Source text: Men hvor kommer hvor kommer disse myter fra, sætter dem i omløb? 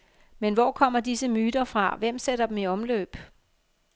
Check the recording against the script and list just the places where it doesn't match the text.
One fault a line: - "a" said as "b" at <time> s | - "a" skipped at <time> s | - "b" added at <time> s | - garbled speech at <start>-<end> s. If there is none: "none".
- "hvor kommer" skipped at 1.0 s
- "hvem" added at 1.9 s